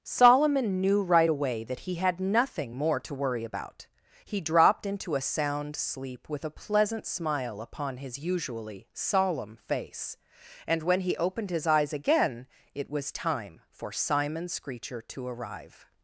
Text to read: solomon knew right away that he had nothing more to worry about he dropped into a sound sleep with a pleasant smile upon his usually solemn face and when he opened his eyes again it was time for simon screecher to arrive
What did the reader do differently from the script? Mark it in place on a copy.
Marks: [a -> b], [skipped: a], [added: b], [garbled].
solomon knew right away that he had nothing more to worry about he dropped into a sound sleep with a pleasant smile upon his usually solemn face and when he opened his eyes again it was time for simon screecher to arrive